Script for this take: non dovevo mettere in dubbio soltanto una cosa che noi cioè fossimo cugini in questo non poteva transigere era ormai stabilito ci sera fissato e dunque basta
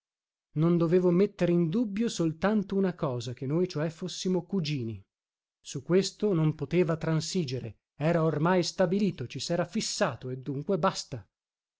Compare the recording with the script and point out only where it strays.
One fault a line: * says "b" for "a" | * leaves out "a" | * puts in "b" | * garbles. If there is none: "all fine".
* says "su" for "in"